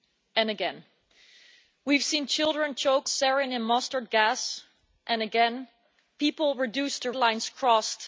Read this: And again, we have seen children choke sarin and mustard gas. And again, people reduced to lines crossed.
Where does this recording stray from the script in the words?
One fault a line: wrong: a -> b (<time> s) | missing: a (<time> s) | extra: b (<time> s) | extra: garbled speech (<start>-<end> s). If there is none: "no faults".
no faults